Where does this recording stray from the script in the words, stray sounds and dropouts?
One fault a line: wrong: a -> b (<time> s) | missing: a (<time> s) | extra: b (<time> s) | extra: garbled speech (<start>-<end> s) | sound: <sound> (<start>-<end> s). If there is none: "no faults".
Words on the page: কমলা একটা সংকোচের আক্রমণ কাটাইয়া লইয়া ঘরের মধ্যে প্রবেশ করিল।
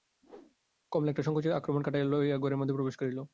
sound: whoosh (0.2-0.6 s)